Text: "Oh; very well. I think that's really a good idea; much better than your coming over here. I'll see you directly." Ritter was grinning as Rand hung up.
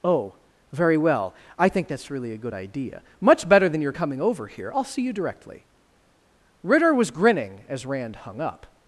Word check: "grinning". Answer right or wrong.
right